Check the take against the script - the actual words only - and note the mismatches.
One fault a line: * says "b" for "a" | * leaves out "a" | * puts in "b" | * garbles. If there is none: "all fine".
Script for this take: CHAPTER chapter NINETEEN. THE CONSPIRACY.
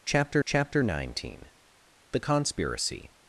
all fine